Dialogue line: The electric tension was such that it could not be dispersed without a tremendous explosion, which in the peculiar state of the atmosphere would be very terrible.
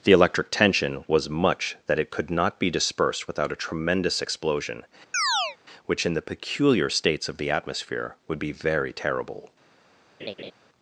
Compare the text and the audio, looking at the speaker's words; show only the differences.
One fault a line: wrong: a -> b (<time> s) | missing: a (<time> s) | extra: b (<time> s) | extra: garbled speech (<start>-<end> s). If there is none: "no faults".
wrong: such -> much (1.3 s)
wrong: state -> states (6.9 s)